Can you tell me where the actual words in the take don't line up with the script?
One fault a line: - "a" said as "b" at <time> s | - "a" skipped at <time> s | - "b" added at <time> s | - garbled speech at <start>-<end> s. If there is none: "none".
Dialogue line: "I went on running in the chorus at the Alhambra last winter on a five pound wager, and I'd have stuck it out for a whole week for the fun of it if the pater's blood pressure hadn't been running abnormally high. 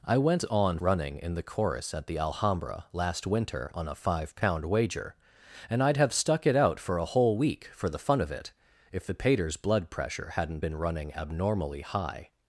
none